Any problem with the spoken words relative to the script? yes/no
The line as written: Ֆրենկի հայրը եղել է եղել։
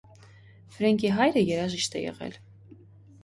yes